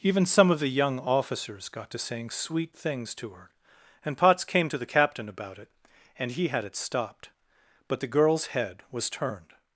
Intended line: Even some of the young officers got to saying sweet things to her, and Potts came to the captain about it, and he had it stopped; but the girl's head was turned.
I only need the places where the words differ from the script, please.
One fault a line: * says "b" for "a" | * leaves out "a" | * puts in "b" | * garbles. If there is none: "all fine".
all fine